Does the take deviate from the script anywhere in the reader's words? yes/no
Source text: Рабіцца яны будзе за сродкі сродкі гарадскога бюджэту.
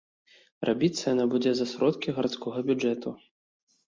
yes